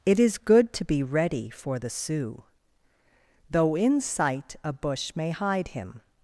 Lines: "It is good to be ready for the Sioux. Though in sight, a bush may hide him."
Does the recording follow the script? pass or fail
pass